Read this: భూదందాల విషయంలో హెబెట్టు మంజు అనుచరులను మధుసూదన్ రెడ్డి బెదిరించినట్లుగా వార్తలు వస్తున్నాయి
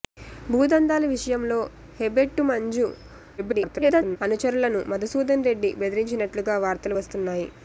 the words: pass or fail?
fail